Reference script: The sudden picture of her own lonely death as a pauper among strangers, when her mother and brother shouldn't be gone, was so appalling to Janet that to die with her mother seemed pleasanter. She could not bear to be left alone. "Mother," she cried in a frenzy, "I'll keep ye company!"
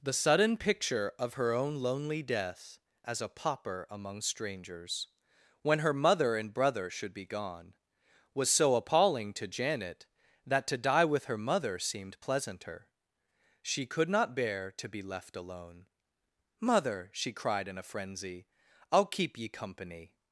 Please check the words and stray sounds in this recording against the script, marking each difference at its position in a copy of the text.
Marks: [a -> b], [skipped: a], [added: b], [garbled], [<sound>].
The sudden picture of her own lonely death as a pauper among strangers, when her mother and brother [shouldn't -> should] be gone, was so appalling to Janet that to die with her mother seemed pleasanter. She could not bear to be left alone. "Mother," she cried in a frenzy, "I'll keep ye company!"